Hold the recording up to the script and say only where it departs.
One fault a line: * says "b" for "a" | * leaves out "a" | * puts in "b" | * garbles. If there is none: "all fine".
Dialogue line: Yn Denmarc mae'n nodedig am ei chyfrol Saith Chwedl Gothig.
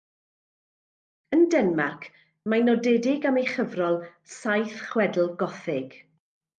all fine